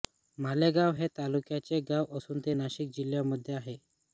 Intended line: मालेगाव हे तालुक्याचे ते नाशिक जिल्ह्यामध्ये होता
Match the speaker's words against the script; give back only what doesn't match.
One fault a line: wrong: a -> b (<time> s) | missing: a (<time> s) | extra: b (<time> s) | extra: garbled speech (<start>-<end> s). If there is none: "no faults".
extra: गाव असून (1.9 s)
wrong: होता -> आहे (3.5 s)